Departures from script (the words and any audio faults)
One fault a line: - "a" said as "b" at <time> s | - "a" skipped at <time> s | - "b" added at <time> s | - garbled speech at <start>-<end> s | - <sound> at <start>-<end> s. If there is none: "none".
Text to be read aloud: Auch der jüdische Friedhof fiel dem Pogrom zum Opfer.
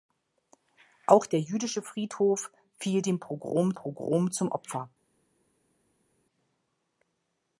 - "Pogrom" added at 3.7 s